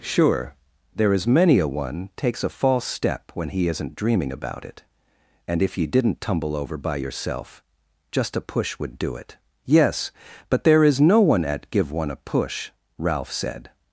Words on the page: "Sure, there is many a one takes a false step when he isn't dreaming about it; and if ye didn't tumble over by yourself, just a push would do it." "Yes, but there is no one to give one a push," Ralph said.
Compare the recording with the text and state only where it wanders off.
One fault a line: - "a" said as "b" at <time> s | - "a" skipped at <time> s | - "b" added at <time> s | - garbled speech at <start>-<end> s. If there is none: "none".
- "to" said as "at" at 11.4 s